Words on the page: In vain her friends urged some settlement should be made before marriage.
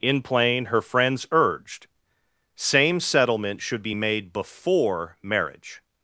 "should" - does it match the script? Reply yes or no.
yes